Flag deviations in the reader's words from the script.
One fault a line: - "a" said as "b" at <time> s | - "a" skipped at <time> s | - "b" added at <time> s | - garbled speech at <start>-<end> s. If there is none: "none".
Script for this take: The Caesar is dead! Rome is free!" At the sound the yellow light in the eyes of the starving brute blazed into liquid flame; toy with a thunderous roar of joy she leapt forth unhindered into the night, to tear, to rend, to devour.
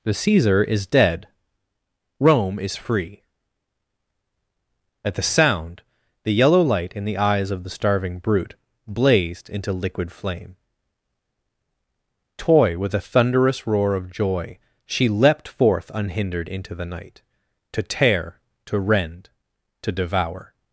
none